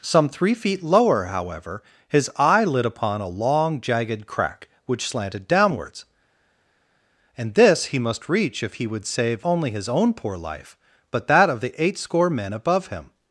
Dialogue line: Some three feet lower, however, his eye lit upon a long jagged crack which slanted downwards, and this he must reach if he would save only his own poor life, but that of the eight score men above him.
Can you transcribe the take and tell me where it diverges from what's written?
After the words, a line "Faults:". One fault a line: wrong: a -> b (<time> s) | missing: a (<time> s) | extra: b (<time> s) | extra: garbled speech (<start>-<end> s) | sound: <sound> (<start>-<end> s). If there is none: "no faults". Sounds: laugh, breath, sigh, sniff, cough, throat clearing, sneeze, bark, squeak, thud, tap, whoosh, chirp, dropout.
Some three feet lower, however, his eye lit upon a long jagged crack which slanted downwards, and this he must reach if he would save only his own poor life, but that of the eight score men above him.
Faults:
no faults